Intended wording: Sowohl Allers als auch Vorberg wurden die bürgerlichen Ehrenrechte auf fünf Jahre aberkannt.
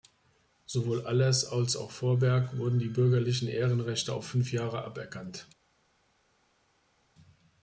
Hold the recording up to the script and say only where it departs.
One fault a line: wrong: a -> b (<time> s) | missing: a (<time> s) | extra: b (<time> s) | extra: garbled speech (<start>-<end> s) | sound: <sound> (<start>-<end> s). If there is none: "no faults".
no faults